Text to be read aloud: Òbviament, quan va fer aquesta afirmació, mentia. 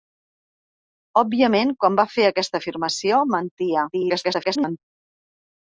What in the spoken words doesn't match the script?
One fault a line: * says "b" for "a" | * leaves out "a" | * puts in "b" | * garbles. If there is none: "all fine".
* garbles